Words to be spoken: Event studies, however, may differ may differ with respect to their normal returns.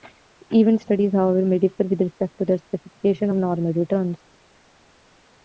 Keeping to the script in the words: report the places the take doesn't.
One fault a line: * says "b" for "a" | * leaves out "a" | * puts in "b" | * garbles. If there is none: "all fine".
* leaves out "may differ"
* puts in "specification of"